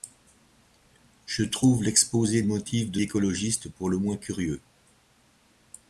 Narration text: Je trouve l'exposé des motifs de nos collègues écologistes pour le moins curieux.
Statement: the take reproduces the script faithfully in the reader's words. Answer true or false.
false